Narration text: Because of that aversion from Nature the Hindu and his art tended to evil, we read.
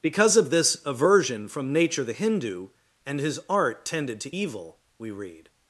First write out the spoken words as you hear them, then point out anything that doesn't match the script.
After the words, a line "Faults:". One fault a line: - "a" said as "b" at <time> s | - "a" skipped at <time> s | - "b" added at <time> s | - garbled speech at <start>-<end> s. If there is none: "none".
Because of this aversion from Nature the Hindu and his art tended to evil, we read.
Faults:
- "that" said as "this" at 0.5 s